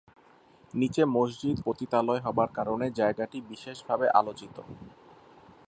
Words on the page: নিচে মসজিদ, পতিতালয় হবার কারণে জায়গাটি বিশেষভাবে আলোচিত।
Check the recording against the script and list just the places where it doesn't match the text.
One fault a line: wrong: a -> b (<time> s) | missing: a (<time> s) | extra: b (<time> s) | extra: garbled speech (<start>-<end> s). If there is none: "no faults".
no faults